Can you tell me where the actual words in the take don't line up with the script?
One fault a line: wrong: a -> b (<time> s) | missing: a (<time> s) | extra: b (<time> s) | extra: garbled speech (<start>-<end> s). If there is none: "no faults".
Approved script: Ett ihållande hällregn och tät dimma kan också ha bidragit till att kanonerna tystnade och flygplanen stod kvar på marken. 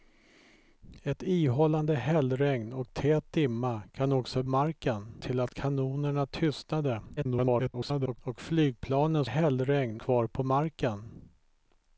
wrong: bidragit -> marken (4.5 s)
extra: garbled speech (7.2-8.2 s)
wrong: stod -> hällregn (9.2 s)